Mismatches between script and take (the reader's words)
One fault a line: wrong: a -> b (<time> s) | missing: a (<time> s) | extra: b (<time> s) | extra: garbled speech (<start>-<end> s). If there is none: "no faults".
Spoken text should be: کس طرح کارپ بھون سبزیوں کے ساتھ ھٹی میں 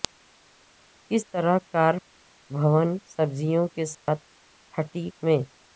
no faults